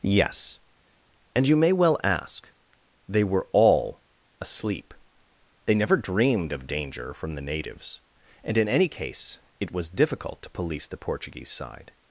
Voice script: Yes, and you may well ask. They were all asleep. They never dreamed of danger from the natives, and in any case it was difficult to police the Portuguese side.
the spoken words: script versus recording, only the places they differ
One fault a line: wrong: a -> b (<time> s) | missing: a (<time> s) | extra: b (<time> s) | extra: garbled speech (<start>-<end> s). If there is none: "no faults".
no faults